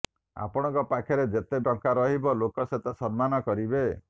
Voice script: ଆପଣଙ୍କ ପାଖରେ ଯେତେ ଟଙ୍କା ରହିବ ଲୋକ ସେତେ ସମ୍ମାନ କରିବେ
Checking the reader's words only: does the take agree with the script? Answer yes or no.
yes